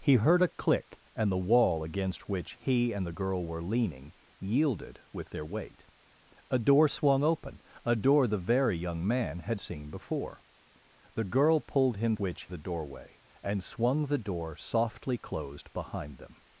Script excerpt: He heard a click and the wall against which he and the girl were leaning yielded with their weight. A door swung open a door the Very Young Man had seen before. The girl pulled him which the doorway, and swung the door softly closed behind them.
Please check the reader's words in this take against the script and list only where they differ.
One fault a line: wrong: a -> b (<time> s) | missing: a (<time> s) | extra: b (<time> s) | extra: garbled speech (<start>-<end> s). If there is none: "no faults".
no faults